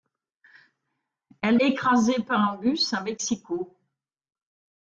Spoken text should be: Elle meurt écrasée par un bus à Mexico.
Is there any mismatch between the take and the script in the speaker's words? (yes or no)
yes